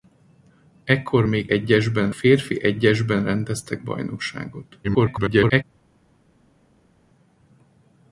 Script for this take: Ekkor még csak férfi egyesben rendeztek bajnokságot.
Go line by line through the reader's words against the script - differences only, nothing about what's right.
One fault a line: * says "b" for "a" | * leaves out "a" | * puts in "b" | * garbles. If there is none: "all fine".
* says "egyesben" for "csak"
* garbles